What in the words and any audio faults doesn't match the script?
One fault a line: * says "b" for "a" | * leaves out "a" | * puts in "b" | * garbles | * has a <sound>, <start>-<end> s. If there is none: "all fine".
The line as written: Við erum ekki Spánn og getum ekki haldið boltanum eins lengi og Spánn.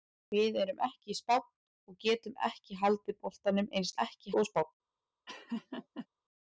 * says "ekki" for "lengi"
* has a laugh, 5.3-6.1 s